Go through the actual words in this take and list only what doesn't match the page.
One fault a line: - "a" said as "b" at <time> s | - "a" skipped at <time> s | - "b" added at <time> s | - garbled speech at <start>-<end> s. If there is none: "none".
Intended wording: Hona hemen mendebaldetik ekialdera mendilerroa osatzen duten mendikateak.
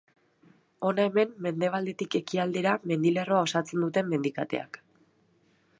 none